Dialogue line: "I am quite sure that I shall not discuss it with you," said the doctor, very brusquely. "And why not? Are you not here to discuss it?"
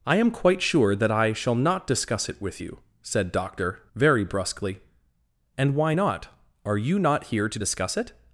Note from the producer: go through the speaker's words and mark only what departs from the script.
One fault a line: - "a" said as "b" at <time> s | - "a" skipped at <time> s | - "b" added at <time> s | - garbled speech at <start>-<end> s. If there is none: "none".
- "the" skipped at 3.3 s